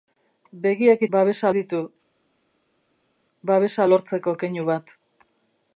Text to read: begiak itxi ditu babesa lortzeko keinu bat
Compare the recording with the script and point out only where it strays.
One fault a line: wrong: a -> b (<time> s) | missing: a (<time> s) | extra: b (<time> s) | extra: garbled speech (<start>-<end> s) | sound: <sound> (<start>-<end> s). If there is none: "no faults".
wrong: itxi -> babesa (1.2 s)